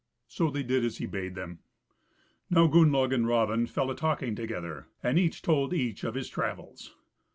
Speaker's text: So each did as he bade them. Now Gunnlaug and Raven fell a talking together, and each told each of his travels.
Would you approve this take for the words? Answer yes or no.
no